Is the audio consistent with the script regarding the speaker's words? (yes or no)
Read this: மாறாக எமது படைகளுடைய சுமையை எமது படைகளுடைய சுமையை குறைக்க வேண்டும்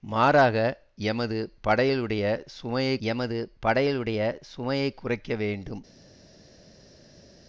yes